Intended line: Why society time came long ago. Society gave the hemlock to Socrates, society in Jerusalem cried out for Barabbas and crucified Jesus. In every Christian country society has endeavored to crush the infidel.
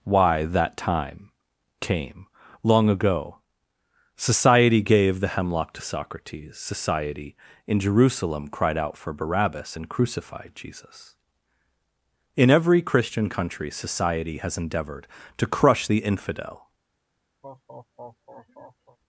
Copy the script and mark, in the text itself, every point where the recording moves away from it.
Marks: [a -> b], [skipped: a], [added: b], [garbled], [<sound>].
Why [society -> that] time came long ago. Society gave the hemlock to Socrates, society in Jerusalem cried out for Barabbas and crucified Jesus. In every Christian country society has endeavored to crush the infidel. [laugh]